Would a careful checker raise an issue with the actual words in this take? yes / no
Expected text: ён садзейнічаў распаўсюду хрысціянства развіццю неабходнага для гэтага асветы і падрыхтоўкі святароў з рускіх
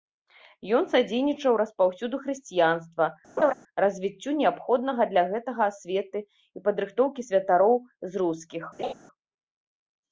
no